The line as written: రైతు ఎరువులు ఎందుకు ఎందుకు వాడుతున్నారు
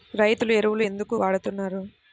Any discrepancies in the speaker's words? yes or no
yes